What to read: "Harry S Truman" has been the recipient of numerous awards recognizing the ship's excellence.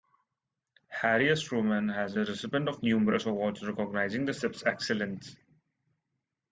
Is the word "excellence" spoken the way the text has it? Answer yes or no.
yes